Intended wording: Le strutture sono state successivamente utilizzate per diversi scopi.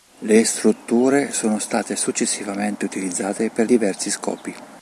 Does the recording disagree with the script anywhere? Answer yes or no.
no